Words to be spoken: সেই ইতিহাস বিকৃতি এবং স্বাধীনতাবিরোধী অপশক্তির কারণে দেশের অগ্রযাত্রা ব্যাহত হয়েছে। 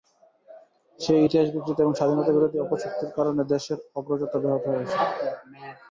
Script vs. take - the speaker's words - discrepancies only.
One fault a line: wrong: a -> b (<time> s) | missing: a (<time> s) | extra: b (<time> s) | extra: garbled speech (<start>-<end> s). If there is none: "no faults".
no faults